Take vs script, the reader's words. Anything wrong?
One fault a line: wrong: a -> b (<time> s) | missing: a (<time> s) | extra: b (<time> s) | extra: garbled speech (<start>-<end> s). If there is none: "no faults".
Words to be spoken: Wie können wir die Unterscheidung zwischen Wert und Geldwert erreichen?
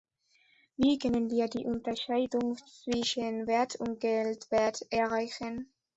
no faults